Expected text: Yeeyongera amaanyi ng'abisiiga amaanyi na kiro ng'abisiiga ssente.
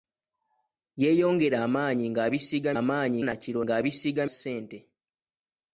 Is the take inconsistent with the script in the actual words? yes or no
no